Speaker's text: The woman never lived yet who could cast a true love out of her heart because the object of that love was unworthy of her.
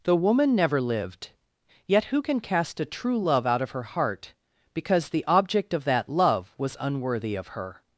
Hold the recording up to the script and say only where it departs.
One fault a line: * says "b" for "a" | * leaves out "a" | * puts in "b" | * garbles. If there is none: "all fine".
* says "can" for "could"